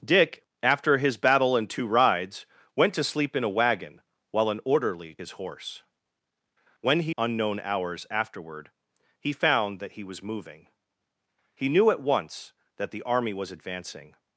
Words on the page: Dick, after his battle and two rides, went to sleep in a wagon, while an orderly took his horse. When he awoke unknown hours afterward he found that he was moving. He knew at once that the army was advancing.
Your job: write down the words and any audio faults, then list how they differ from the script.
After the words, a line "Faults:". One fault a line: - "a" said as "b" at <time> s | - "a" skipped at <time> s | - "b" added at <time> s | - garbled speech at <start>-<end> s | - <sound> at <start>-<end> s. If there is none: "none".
Dick, after his battle and two rides, went to sleep in a wagon, while an orderly his horse. When he unknown hours afterward he found that he was moving. He knew at once that the army was advancing.
Faults:
- "took" skipped at 5.2 s
- "awoke" skipped at 7.1 s